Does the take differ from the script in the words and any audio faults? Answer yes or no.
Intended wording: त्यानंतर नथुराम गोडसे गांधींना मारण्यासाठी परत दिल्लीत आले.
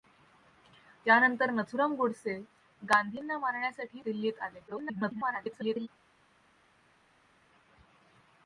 yes